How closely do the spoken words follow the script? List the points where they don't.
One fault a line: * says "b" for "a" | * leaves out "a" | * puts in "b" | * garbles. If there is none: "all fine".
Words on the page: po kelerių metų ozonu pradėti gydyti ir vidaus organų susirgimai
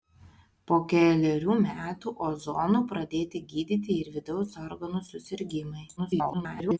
* garbles